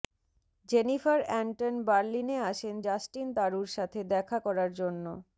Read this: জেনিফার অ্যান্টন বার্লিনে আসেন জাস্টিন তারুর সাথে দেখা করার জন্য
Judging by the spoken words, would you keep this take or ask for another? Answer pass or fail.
pass